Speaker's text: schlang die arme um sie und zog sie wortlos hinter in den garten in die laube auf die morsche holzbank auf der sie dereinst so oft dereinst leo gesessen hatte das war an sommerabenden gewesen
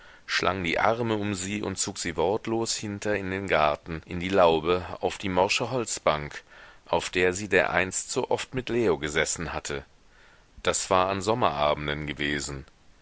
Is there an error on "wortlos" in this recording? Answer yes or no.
no